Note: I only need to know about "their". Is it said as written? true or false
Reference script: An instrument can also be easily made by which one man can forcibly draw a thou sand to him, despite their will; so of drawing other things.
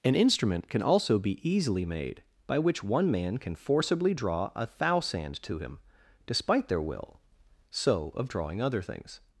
true